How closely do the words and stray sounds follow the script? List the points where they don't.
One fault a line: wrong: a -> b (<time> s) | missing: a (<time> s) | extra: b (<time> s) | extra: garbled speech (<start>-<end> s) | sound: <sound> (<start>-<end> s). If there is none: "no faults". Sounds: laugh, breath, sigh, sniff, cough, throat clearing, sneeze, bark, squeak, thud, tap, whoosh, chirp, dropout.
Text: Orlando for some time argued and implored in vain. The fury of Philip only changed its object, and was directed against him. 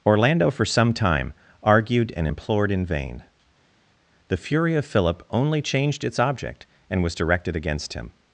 no faults